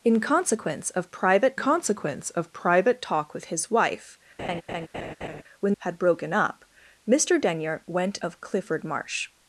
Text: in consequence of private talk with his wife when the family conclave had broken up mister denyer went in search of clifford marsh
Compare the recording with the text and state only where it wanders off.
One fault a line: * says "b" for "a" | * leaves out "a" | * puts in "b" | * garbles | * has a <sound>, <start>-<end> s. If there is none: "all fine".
* puts in "consequence of private"
* has a laugh, 4.4-5.4 s
* leaves out "the family conclave"
* leaves out "in search"